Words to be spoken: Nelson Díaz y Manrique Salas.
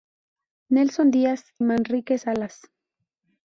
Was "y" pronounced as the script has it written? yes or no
no